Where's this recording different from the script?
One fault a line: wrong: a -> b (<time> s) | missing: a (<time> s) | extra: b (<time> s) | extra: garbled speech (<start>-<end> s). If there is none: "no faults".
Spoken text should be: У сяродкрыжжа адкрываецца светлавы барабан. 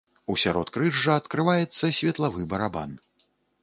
no faults